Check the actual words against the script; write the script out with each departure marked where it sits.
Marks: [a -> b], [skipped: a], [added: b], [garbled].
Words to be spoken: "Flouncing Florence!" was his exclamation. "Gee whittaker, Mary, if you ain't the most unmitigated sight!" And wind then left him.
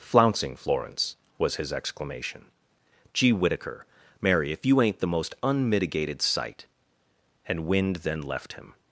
"Flouncing Florence!" was his exclamation. "Gee whittaker, Mary, if you ain't the most unmitigated sight!" And wind then left him.